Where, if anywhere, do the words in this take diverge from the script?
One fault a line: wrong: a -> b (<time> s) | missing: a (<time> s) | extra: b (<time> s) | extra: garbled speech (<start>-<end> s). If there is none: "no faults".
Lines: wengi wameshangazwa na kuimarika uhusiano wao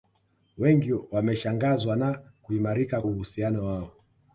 no faults